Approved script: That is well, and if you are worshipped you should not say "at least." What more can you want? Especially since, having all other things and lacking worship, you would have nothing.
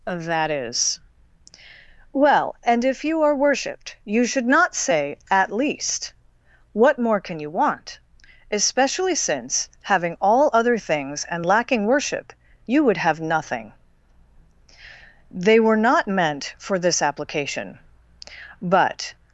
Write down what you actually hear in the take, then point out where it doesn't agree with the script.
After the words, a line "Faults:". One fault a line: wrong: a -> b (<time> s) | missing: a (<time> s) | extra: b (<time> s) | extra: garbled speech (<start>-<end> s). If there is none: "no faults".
That is well, and if you are worshipped you should not say "at least." What more can you want? Especially since, having all other things and lacking worship, you would have nothing. They were not meant for this application, but
Faults:
extra: They were not meant for this application but (15.3 s)